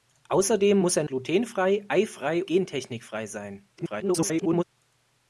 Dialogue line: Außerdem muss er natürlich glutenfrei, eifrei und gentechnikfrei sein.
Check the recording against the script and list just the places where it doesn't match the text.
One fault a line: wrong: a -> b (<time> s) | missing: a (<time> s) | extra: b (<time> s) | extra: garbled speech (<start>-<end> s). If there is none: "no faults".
missing: natürlich (1.0 s)
missing: und (2.4 s)
extra: garbled speech (3.8-4.6 s)